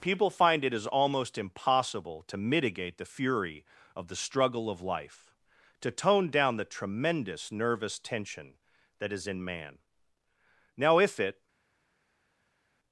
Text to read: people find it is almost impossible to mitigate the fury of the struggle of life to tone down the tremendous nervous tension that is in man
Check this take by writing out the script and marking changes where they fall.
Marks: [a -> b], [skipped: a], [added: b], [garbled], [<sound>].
people find it is almost impossible to mitigate the fury of the struggle of life to tone down the tremendous nervous tension that is in man [added: now if it]